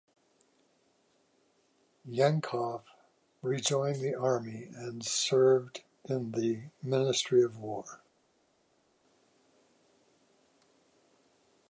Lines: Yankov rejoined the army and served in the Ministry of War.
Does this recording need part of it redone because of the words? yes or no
no